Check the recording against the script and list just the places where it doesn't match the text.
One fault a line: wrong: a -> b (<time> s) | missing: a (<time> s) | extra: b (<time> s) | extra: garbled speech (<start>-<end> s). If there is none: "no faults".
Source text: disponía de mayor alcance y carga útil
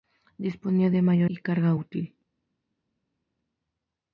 missing: alcance (1.3 s)